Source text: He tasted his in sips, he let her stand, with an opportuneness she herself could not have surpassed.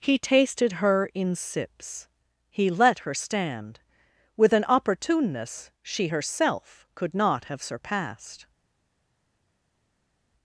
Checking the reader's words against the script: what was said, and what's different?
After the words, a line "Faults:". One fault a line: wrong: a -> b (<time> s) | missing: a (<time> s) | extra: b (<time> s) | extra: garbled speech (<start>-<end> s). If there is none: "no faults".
He tasted her in sips, he let her stand, with an opportuneness she herself could not have surpassed.
Faults:
wrong: his -> her (0.7 s)